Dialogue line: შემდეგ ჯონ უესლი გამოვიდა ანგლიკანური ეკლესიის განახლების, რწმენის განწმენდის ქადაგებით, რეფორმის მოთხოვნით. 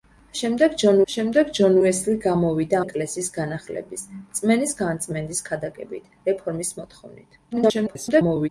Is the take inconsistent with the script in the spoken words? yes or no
yes